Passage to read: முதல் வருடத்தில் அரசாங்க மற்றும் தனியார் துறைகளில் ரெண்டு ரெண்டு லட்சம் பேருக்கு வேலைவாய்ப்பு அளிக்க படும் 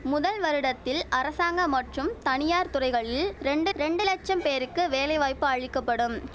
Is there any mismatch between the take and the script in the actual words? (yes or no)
no